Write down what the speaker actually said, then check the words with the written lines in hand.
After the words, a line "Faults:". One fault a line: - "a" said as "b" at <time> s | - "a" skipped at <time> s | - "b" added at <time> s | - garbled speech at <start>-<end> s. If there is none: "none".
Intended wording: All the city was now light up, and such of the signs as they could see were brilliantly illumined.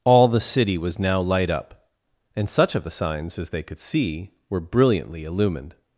All the city was now light up, and such of the signs as they could see were brilliantly illumined.
Faults:
none